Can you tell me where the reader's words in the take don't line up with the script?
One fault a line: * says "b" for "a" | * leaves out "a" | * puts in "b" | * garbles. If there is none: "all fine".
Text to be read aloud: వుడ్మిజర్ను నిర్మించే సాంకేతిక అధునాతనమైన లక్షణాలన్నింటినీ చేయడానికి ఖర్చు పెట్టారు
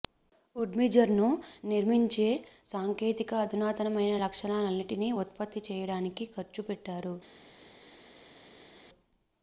* puts in "ఉత్పత్తి"